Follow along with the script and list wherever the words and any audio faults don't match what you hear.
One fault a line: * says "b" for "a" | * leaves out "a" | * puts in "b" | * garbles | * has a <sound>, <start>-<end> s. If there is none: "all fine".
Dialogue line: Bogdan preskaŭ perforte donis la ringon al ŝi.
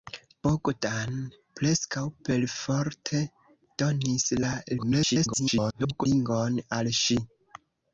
* garbles